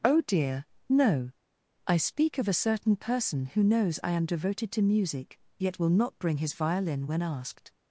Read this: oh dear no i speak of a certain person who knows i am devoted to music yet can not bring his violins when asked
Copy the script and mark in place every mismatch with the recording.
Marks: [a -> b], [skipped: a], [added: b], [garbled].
oh dear no i speak of a certain person who knows i am devoted to music yet [can -> will] not bring his [violins -> violin] when asked